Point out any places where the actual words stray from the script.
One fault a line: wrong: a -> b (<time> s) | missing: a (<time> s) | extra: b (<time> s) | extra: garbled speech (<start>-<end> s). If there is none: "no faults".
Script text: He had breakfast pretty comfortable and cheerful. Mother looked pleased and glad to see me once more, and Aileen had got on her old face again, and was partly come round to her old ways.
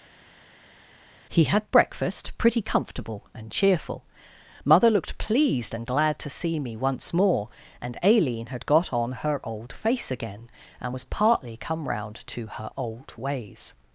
no faults